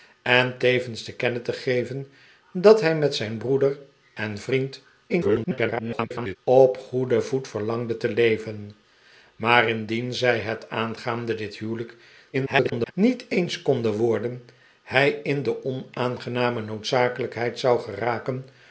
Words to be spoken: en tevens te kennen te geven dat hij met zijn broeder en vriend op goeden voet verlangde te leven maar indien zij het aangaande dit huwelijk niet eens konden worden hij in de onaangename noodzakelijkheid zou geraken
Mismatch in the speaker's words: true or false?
true